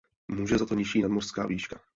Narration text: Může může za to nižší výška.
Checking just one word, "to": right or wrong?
right